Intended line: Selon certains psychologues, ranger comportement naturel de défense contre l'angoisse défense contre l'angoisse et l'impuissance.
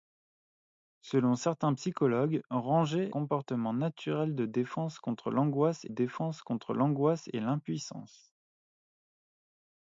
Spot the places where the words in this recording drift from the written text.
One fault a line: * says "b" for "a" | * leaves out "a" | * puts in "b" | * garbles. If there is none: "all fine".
all fine